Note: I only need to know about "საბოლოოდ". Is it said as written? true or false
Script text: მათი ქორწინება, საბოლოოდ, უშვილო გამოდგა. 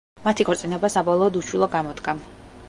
true